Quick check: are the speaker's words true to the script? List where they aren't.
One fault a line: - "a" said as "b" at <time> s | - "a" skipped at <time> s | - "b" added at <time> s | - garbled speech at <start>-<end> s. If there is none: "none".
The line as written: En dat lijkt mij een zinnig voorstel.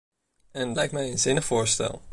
- "dat" skipped at 0.7 s